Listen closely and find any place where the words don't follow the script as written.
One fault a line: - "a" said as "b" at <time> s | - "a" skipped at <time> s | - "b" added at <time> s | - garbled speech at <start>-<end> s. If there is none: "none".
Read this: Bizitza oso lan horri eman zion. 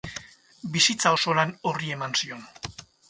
none